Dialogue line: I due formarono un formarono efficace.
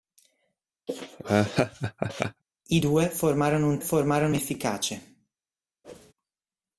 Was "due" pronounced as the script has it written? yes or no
yes